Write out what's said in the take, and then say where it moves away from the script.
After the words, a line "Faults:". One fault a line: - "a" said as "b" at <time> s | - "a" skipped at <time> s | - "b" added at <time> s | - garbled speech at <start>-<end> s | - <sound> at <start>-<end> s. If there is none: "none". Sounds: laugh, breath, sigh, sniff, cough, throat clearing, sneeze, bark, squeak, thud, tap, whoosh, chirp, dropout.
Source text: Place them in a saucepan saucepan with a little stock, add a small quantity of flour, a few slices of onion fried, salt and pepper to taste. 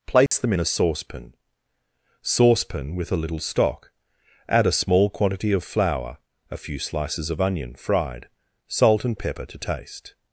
Place them in a saucepan saucepan with a little stock, add a small quantity of flour, a few slices of onion fried, salt and pepper to taste.
Faults:
- dropout at 0.3-0.3 s